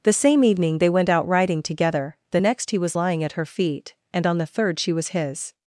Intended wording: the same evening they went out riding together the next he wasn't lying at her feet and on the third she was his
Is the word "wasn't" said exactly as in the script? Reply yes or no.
no